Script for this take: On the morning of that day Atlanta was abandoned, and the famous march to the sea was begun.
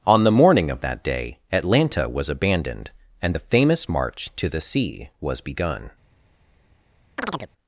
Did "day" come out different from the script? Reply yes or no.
no